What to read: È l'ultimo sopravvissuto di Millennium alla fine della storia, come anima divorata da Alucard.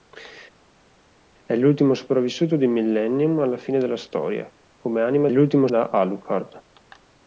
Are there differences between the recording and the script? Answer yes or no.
yes